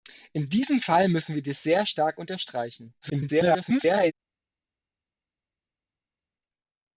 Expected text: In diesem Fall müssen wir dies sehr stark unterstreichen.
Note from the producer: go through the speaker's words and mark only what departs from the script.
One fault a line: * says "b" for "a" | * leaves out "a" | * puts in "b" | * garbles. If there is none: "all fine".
* garbles